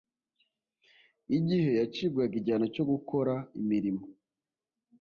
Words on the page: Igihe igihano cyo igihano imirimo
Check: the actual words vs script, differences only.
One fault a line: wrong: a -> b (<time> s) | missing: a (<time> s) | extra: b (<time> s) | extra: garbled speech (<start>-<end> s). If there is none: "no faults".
extra: yacibwaga (1.8 s)
wrong: igihano -> gukora (2.9 s)